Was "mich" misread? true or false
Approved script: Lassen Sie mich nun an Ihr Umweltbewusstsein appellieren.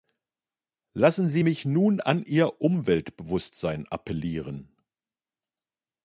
false